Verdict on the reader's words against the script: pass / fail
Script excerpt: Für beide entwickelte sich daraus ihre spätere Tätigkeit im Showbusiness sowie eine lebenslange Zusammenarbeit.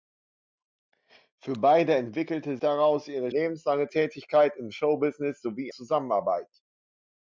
fail